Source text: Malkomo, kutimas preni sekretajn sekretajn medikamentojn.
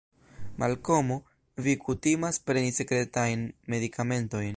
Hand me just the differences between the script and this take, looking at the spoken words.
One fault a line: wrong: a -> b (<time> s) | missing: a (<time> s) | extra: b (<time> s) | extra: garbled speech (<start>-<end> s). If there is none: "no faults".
extra: vi (1.6 s)
missing: sekretajn (3.5 s)